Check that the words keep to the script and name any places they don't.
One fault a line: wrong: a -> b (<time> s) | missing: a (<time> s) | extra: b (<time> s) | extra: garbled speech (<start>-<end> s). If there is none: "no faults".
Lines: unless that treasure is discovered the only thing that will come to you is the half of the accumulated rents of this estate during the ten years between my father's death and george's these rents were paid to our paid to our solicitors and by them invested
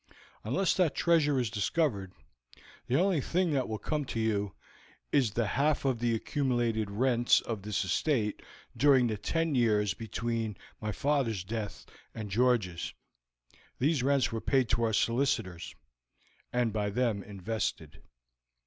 missing: paid to our (14.9 s)